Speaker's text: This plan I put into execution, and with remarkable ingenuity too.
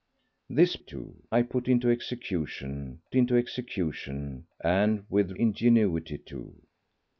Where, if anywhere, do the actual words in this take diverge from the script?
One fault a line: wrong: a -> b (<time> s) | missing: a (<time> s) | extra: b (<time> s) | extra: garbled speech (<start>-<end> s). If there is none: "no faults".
wrong: plan -> too (0.8 s)
extra: into execution (3.1 s)
missing: remarkable (5.4 s)